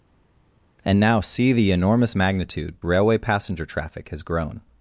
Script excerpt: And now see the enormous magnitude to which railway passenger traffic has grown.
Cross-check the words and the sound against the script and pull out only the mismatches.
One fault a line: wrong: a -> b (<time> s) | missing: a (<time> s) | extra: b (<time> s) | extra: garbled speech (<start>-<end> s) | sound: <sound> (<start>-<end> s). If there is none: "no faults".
missing: to which (2.8 s)